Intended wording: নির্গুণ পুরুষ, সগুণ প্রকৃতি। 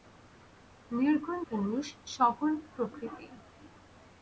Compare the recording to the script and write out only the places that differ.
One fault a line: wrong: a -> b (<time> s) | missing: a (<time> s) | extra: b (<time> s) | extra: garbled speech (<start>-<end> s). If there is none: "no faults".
no faults